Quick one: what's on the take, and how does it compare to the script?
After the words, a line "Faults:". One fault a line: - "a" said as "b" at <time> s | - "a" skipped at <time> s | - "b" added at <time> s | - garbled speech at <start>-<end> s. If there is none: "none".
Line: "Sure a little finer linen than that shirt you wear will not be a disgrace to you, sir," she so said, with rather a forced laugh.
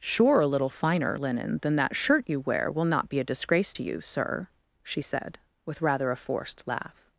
"Sure a little finer linen than that shirt you wear will not be a disgrace to you, sir," she said, with rather a forced laugh.
Faults:
- "so" skipped at 5.0 s